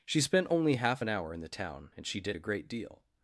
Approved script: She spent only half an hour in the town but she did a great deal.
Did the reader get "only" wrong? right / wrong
right